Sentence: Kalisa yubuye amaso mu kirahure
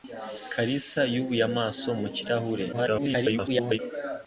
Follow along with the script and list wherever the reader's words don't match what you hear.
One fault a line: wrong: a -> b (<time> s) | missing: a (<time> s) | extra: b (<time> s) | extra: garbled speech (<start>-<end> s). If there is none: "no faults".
extra: garbled speech (2.7-3.8 s)